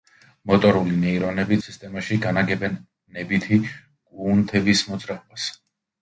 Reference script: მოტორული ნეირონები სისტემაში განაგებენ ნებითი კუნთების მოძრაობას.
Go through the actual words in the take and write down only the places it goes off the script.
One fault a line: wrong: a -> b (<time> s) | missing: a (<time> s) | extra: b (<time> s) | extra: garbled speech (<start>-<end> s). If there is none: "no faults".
no faults